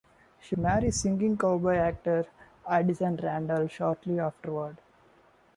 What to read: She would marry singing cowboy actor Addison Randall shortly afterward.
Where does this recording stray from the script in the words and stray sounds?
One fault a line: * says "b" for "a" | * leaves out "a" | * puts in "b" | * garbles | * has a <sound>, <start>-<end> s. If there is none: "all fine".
* leaves out "would"